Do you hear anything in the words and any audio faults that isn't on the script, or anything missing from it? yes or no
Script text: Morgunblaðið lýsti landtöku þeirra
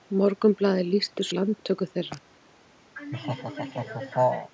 yes